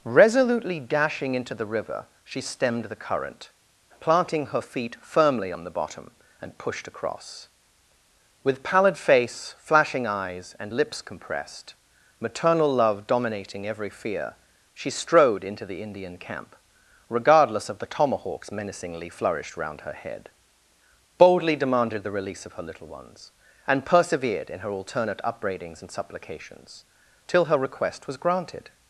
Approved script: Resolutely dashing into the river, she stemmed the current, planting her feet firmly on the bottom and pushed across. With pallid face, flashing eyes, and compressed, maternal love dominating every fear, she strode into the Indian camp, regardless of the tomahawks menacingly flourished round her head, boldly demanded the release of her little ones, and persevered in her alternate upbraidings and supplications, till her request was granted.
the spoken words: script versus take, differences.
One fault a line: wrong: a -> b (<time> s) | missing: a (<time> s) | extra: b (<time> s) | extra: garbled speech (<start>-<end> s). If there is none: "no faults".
extra: lips (10.7 s)